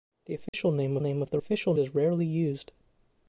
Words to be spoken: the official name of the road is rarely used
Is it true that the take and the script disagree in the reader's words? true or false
true